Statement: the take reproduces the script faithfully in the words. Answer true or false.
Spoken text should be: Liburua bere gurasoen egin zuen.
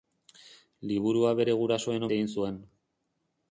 true